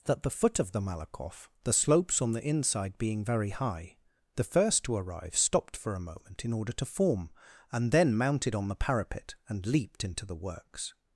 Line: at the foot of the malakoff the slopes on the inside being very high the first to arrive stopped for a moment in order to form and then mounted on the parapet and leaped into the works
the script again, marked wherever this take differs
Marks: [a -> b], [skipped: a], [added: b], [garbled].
[at -> that] the foot of the malakoff the slopes on the inside being very high the first to arrive stopped for a moment in order to form and then mounted on the parapet and leaped into the works